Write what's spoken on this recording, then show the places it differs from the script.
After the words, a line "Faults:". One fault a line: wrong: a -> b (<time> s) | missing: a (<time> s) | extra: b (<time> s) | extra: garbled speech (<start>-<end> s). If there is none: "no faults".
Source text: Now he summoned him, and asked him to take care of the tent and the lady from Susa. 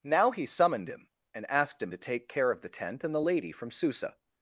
Now he summoned him, and asked him to take care of the tent and the lady from Susa.
Faults:
no faults